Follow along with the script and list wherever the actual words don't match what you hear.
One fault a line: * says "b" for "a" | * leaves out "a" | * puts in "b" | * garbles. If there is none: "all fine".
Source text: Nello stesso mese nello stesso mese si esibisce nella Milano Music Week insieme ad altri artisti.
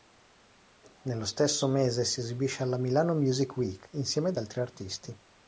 * leaves out "nello stesso mese"
* says "alla" for "nella"